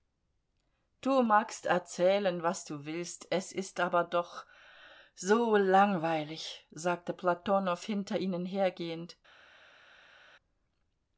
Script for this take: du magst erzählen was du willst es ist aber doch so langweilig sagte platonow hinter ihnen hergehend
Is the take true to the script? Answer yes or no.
yes